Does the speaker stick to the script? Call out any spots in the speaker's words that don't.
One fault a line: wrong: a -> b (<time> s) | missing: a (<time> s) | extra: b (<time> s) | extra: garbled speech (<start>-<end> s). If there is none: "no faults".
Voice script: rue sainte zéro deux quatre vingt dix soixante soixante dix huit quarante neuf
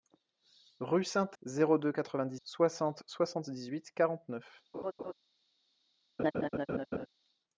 no faults